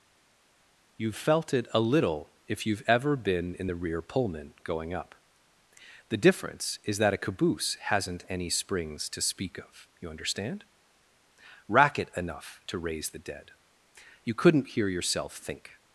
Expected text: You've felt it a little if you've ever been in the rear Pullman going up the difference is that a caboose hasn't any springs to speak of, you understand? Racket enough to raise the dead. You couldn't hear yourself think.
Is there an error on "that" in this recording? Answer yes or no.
no